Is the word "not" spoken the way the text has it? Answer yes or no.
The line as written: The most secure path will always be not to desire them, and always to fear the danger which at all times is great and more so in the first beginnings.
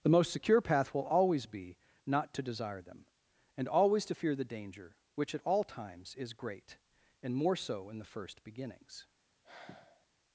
yes